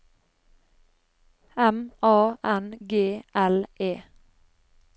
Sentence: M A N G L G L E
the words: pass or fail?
fail